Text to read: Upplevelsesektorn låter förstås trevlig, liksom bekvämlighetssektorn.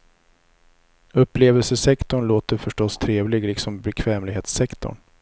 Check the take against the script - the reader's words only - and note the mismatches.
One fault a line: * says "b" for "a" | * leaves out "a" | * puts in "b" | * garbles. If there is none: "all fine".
all fine